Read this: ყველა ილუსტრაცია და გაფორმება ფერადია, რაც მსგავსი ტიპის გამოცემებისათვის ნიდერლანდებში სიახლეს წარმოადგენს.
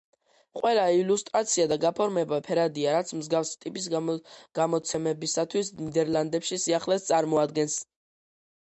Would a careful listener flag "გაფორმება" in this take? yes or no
no